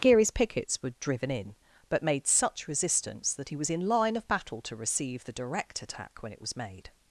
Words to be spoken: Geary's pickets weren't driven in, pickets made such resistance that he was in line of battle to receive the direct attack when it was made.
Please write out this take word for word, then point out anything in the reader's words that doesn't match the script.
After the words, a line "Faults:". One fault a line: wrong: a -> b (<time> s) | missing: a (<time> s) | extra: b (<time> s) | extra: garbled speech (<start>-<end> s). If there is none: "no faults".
Geary's pickets were driven in, but made such resistance that he was in line of battle to receive the direct attack when it was made.
Faults:
wrong: weren't -> were (0.8 s)
wrong: pickets -> but (1.9 s)